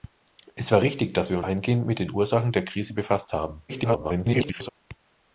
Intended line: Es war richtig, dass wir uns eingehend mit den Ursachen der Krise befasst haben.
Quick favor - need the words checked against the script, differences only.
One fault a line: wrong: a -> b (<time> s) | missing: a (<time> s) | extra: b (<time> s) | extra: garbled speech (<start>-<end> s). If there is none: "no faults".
missing: uns (1.4 s)
extra: garbled speech (3.7-4.7 s)